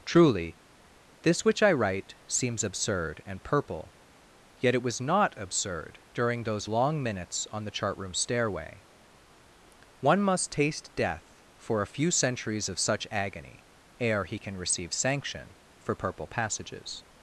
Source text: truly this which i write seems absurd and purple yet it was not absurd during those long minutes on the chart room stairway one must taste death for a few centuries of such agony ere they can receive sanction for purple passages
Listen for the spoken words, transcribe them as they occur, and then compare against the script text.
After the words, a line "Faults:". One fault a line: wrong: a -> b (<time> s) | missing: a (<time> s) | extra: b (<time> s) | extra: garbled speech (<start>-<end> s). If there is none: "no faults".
truly this which i write seems absurd and purple yet it was not absurd during those long minutes on the chart room stairway one must taste death for a few centuries of such agony ere he can receive sanction for purple passages
Faults:
wrong: they -> he (14.2 s)